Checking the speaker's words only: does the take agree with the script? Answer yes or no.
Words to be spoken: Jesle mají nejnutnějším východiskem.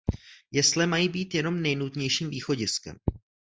no